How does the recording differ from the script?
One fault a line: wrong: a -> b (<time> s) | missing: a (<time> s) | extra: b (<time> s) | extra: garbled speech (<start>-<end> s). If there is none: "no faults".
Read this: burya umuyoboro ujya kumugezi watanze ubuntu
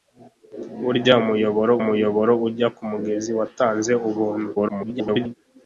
extra: umuyoboro (1.8 s)
extra: garbled speech (4.6-5.3 s)